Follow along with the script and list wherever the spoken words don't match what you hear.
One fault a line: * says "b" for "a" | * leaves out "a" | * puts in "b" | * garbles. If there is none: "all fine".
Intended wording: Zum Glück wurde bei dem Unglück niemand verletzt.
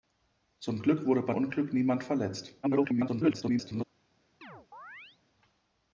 * leaves out "dem"
* garbles